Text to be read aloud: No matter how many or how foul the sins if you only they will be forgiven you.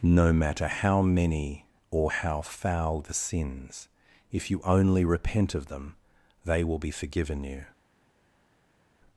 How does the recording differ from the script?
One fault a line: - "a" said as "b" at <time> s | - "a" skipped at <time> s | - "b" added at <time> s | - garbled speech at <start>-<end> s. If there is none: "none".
- "repent of them" added at 5.0 s